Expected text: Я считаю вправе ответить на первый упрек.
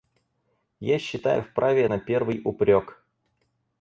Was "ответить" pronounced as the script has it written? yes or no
no